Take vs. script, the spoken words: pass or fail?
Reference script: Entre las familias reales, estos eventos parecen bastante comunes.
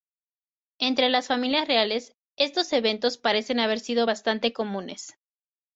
fail